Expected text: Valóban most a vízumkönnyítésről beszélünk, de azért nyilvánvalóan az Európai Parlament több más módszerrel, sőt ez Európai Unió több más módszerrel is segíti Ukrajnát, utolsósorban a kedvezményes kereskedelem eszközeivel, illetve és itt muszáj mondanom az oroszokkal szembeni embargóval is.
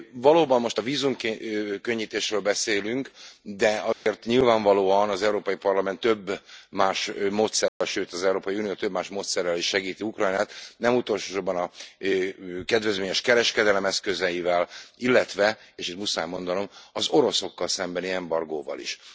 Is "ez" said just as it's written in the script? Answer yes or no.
no